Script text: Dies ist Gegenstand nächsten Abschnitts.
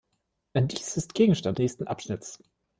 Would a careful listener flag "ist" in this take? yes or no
no